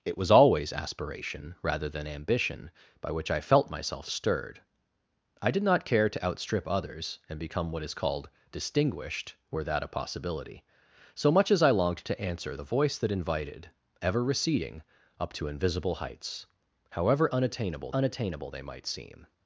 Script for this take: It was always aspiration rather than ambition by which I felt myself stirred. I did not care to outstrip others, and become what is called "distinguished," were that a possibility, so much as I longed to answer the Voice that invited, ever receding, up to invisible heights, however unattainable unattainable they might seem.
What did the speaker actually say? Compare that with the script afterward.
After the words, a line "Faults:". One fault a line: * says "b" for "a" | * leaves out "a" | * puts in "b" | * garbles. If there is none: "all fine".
It was always aspiration rather than ambition by which I felt myself stirred. I did not care to outstrip others, and become what is called "distinguished," were that a possibility, so much as I longed to answer the Voice that invited, ever receding, up to invisible heights, however unattainable unattainable they might seem.
Faults:
all fine